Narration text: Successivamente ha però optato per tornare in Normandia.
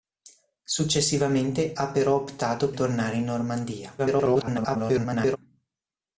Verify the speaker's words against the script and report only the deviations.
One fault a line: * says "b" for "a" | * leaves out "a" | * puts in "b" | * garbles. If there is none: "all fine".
* leaves out "per"
* garbles